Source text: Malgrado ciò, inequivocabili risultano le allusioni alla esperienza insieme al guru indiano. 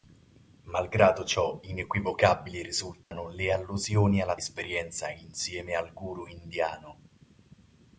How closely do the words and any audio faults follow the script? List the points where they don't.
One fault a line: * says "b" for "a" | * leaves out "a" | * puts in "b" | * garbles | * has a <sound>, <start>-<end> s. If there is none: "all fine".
* has a dropout, 3.0-3.1 s